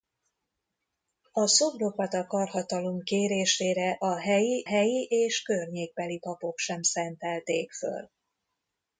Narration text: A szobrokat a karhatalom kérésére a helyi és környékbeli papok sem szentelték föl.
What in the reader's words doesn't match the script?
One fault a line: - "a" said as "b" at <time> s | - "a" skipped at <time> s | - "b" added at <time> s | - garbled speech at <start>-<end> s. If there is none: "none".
- "helyi" added at 4.6 s